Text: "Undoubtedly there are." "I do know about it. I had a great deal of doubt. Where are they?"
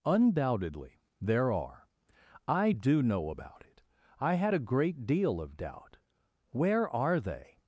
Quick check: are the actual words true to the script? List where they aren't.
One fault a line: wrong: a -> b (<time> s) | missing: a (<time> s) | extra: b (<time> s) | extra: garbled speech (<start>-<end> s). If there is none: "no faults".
no faults